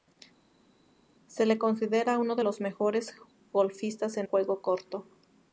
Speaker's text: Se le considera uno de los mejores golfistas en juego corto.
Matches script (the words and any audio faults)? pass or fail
pass